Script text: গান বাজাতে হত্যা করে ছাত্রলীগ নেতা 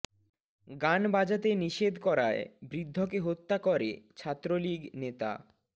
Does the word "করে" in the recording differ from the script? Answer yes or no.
no